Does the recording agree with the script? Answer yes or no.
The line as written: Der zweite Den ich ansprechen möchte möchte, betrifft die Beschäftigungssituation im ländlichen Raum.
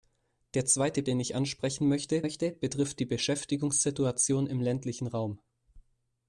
yes